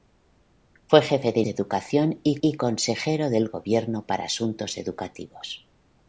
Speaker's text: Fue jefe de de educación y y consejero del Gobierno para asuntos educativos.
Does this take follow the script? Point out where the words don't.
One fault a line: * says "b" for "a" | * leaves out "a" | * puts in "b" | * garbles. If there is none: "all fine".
all fine